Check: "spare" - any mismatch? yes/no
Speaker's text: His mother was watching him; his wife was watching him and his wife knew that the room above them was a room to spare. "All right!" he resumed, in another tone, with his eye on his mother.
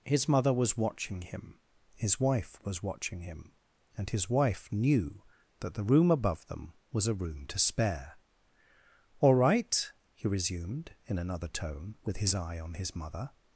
no